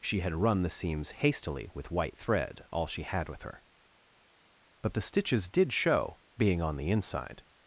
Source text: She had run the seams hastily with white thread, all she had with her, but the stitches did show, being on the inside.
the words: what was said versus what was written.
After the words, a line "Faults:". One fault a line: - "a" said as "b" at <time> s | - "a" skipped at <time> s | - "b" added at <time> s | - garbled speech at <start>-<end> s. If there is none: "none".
She had run the seams hastily with white thread, all she had with her, but the stitches did show, being on the inside.
Faults:
none